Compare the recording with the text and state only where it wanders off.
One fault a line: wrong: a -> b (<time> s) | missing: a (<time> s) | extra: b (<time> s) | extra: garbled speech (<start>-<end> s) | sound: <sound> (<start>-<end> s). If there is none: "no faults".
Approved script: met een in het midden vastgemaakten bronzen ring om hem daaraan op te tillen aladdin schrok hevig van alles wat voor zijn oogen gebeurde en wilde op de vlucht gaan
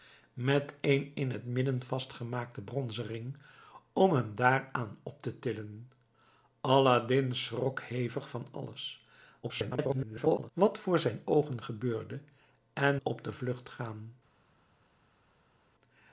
extra: garbled speech (9.4-10.5 s)
missing: wilde (13.0 s)